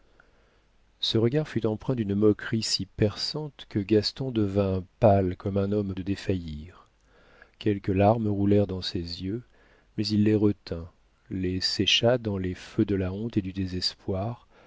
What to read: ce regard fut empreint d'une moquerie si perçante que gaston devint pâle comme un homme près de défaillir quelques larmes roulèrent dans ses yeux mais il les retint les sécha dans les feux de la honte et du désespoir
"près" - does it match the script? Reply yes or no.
no